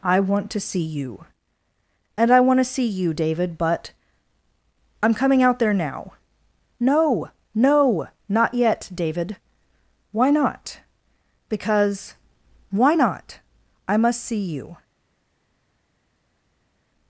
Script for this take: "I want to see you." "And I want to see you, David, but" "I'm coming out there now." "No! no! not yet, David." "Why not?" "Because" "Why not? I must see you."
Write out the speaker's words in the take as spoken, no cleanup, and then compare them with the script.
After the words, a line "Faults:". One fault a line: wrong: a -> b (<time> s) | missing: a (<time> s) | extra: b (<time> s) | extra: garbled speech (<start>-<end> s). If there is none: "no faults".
"I want to see you." "And I want to see you, David, but" "I'm coming out there now." "No! no! not yet, David." "Why not?" "Because" "Why not? I must see you."
Faults:
no faults